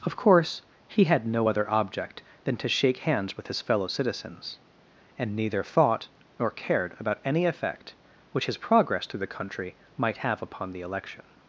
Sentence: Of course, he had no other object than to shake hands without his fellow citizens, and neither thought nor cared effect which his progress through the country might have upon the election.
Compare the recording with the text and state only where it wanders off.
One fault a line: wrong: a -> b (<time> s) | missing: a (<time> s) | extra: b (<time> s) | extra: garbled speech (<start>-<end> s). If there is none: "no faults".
wrong: without -> with (3.4 s)
extra: about any (7.0 s)